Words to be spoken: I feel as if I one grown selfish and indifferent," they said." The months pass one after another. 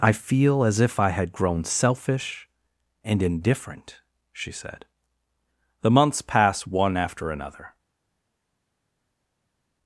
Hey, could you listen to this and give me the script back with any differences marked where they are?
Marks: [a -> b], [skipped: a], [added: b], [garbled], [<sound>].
I feel as if I [one -> had] grown selfish and indifferent," [they -> she] said." The months pass one after another.